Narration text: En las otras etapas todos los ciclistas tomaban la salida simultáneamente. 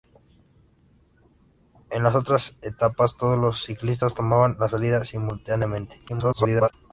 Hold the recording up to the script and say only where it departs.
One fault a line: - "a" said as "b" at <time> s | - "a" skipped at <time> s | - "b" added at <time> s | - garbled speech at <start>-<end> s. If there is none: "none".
- garbled speech at 6.1-6.7 s